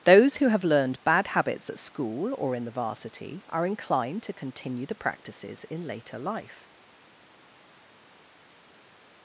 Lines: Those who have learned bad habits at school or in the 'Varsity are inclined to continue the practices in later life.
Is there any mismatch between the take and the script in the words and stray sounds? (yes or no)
no